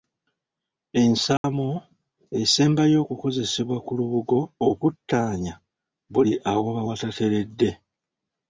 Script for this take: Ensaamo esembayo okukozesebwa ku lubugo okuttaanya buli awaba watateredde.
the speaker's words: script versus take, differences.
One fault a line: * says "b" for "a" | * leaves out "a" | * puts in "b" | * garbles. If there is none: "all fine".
all fine